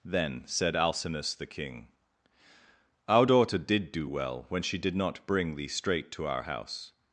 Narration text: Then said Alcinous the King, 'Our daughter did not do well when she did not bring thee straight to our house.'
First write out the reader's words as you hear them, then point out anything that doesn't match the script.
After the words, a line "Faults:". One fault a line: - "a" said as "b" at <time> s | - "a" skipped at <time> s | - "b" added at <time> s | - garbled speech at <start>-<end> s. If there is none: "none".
Then said Alcinous the King, 'Our daughter did do well when she did not bring thee straight to our house.'
Faults:
- "not" skipped at 3.9 s